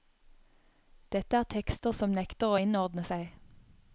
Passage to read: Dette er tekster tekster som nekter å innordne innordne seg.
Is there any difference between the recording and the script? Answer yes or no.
yes